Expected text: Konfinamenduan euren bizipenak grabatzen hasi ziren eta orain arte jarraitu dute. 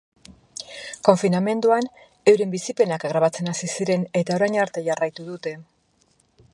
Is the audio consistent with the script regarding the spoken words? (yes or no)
yes